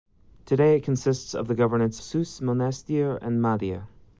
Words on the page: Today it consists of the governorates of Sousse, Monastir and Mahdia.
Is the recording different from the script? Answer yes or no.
yes